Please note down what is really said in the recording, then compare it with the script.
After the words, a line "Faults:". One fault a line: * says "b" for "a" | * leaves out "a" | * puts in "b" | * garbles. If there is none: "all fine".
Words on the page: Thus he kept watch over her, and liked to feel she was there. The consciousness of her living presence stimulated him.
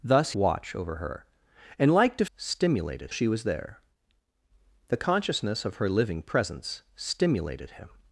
Thus watch over her, and liked to stimulated she was there. The consciousness of her living presence stimulated him.
Faults:
* leaves out "he kept"
* says "stimulated" for "feel"